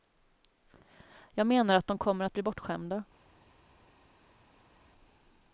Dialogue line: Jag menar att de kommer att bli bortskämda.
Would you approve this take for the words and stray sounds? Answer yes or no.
yes